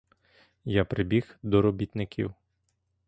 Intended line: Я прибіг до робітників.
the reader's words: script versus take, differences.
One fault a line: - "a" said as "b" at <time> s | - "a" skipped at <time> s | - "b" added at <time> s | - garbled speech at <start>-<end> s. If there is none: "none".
none